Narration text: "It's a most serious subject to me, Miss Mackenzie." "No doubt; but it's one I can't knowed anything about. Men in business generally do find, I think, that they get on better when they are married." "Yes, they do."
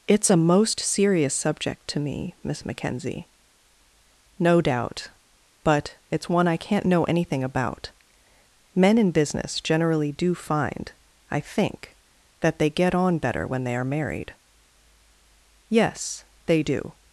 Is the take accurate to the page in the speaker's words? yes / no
no